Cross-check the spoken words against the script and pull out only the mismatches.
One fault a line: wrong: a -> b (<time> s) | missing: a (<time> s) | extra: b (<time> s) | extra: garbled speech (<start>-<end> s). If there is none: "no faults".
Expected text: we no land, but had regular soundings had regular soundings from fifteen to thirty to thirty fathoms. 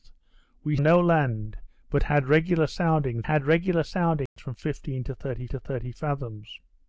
no faults